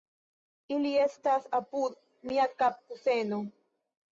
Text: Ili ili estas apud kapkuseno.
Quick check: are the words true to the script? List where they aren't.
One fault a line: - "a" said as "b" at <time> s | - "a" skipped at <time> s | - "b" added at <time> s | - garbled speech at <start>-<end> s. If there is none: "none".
- "ili" skipped at 0.9 s
- "mia" added at 2.3 s